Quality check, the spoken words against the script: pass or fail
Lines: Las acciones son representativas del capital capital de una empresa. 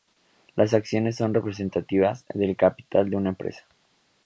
fail